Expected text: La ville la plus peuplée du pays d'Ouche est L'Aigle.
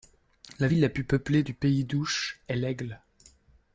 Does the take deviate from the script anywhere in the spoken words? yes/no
no